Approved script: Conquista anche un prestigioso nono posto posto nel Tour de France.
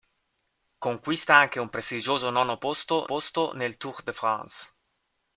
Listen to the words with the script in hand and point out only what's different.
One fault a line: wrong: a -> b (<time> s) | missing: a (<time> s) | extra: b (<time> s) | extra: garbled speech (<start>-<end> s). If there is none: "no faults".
no faults